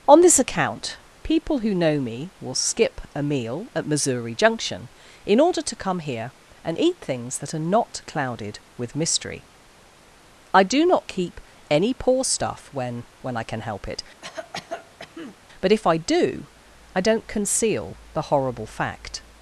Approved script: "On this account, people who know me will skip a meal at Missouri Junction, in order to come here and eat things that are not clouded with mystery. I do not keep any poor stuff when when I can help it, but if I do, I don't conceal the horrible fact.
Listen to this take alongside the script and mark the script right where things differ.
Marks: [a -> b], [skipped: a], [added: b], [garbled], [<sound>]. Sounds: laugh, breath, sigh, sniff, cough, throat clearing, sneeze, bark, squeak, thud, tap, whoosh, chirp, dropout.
"On this account, people who know me will skip a meal at Missouri Junction, in order to come here and eat things that are not clouded with mystery. I do not keep any poor stuff when when I can help it, [cough] but if I do, I don't conceal the horrible fact.